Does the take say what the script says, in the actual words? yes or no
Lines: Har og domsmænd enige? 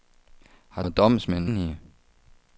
yes